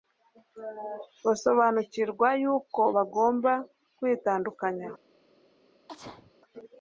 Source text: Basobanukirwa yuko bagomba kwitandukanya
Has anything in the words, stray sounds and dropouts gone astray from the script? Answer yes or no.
yes